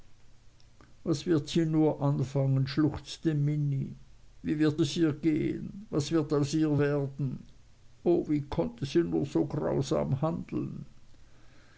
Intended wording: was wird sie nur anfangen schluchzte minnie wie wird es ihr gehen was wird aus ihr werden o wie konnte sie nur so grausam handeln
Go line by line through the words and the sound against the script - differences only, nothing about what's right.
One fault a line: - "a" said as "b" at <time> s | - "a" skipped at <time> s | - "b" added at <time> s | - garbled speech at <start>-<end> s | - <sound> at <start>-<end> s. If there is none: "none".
none